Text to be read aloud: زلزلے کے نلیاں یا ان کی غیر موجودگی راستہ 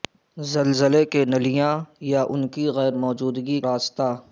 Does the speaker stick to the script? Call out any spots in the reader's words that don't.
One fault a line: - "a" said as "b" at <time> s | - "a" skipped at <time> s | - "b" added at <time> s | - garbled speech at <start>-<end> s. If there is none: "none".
none